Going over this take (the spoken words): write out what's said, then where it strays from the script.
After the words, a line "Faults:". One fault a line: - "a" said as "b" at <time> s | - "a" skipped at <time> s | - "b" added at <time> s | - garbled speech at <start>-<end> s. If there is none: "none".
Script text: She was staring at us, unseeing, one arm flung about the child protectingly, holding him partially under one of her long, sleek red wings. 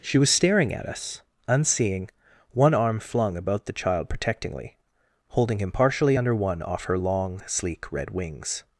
She was staring at us, unseeing, one arm flung about the child protectingly, holding him partially under one off her long, sleek red wings.
Faults:
- "of" said as "off" at 6.6 s